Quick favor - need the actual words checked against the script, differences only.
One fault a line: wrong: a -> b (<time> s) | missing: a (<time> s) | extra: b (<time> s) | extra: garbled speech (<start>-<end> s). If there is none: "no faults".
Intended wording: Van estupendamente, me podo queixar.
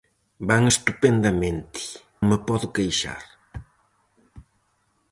no faults